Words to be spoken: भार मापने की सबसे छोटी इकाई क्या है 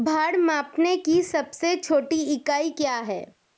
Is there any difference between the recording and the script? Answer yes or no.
no